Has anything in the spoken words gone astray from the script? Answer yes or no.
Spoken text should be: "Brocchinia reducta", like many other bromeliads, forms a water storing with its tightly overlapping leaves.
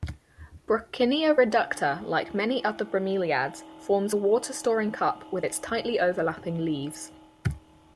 yes